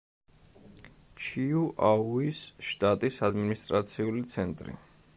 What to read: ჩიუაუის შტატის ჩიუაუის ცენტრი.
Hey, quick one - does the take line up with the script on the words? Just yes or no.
no